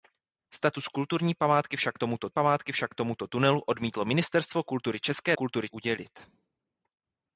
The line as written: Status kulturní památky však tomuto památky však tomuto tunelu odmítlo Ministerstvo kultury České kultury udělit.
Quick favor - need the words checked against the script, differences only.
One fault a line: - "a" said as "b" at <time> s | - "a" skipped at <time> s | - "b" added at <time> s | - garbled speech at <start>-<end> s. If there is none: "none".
none